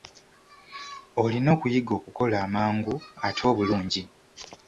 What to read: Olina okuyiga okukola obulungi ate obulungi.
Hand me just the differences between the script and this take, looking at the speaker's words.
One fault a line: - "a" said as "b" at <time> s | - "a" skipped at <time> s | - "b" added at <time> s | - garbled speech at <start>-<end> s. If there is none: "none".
- "obulungi" said as "amangu" at 2.5 s